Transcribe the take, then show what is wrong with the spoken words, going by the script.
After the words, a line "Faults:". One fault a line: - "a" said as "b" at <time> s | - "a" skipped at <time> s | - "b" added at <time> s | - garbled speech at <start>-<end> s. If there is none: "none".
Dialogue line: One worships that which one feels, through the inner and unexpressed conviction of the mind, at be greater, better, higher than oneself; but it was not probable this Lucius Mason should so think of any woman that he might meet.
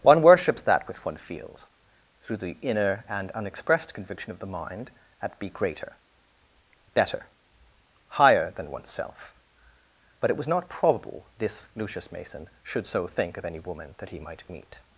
One worships that which one feels, through the inner and unexpressed conviction of the mind, at be greater, better, higher than oneself; but it was not probable this Lucius Mason should so think of any woman that he might meet.
Faults:
none